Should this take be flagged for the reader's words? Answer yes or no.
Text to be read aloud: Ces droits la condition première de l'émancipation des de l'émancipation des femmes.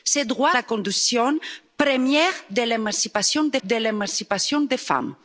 no